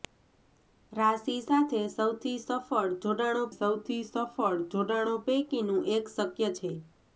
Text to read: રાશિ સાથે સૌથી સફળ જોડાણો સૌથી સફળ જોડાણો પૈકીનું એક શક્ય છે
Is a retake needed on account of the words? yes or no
no